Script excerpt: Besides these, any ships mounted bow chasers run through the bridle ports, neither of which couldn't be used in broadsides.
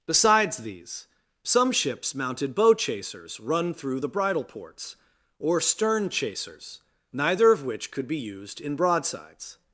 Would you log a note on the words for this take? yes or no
yes